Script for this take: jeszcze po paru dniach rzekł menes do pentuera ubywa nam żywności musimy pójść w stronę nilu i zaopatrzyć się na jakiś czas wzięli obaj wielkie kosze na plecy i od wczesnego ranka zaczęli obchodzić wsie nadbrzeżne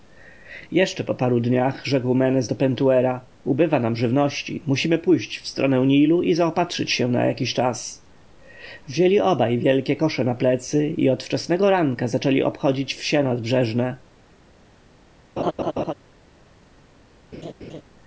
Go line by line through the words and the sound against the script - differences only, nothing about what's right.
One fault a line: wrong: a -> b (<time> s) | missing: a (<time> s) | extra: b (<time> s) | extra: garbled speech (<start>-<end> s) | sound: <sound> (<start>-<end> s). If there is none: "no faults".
sound: laugh (15.4-15.9 s)
sound: laugh (17.3-17.8 s)